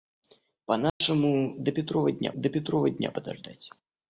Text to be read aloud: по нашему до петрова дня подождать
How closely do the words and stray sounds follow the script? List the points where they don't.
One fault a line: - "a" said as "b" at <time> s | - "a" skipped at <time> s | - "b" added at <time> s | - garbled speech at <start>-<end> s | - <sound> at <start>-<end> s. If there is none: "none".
- dropout at 0.9-1.0 s
- "до петрова дня" added at 2.4 s